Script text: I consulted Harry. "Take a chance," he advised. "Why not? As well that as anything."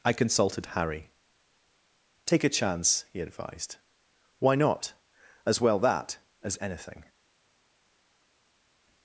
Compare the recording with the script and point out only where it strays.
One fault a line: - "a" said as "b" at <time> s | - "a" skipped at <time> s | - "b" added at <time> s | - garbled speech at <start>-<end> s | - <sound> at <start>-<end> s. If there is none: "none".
none